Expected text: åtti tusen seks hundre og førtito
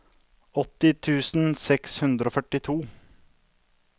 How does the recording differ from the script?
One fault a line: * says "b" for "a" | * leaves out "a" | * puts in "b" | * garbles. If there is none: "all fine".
all fine